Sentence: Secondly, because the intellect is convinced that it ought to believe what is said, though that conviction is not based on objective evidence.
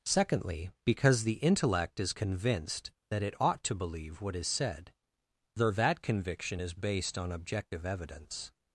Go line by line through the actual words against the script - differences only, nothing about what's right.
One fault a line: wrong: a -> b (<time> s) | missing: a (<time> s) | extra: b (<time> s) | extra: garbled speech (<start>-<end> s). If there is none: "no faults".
missing: not (6.7 s)